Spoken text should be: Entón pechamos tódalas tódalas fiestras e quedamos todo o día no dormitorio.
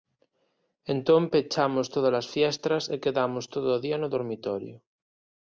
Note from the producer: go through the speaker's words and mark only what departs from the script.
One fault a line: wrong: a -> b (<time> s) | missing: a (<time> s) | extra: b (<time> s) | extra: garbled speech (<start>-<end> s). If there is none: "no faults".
missing: tódalas (2.3 s)